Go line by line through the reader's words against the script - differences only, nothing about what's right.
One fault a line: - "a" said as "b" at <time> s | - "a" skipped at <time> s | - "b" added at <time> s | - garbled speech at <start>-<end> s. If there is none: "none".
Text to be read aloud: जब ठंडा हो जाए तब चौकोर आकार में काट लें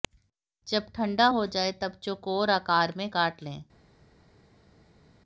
none